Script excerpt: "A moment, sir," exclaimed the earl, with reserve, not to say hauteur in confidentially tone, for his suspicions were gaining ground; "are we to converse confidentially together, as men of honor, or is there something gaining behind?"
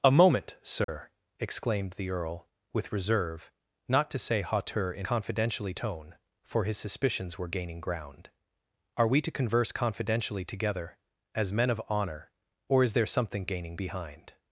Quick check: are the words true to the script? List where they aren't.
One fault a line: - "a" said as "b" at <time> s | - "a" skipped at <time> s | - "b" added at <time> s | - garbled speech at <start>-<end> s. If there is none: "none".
none